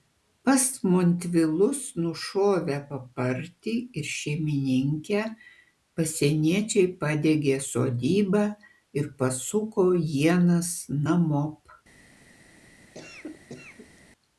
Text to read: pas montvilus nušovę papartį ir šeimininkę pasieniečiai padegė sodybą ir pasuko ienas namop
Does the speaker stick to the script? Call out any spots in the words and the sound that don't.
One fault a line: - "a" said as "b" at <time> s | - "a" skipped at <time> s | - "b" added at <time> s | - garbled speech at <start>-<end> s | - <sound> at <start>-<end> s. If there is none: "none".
- cough at 12.9-14.0 s